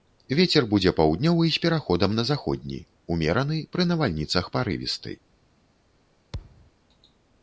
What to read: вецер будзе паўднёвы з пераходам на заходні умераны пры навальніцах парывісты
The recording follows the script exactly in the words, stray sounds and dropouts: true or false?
false